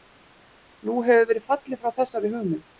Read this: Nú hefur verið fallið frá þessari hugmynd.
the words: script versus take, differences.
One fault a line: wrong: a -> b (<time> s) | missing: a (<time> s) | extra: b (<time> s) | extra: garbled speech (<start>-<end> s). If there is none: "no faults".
no faults